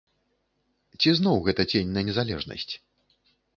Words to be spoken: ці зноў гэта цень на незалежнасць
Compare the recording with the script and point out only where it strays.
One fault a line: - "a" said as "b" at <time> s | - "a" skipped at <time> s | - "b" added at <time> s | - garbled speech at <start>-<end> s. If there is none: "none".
none